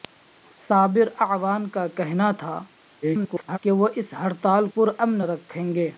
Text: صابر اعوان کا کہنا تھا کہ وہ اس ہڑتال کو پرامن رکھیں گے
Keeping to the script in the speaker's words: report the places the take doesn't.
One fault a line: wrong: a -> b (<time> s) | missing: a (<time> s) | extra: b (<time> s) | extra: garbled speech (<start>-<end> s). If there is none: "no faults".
extra: garbled speech (3.0-3.6 s)
missing: کو (4.7 s)